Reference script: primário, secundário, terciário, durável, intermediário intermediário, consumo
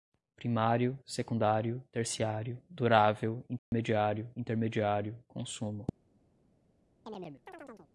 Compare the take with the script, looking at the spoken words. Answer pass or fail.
pass